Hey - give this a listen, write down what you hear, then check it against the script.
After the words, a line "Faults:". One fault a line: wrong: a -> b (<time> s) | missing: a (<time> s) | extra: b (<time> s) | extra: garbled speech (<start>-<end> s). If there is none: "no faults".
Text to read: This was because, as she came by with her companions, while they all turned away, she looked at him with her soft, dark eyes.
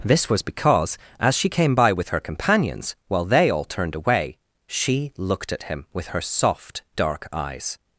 This was because, as she came by with her companions, while they all turned away, she looked at him with her soft, dark eyes.
Faults:
no faults